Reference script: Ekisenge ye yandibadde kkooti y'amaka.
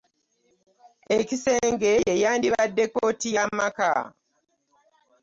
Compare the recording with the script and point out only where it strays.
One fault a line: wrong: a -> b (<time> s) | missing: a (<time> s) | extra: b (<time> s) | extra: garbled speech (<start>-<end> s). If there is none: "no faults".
no faults